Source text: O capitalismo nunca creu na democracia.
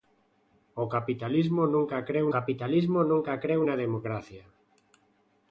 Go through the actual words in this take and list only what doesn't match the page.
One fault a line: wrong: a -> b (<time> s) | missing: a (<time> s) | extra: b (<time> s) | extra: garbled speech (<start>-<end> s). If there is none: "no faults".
extra: capitalismo nunca creu (2.4 s)